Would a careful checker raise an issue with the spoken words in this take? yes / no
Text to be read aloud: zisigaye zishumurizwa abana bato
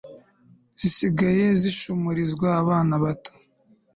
no